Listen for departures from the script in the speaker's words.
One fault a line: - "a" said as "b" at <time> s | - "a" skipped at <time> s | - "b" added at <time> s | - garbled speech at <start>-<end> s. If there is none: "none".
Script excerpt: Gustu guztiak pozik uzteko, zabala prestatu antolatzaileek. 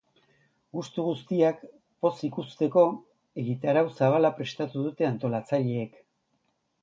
- "egitarau" added at 3.4 s
- "dute" added at 4.9 s